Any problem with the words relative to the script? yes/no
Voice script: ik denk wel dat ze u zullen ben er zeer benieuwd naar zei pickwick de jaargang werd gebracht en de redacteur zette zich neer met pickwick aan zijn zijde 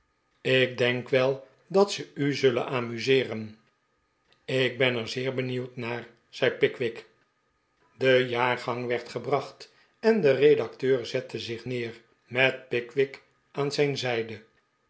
yes